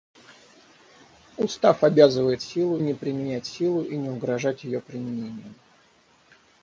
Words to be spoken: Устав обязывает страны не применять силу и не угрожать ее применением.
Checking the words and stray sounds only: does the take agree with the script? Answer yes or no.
no